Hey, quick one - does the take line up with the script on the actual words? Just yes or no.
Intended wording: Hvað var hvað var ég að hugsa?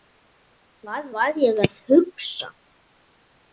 no